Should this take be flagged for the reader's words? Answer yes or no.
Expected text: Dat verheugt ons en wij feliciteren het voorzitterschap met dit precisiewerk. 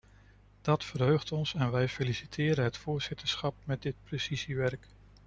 no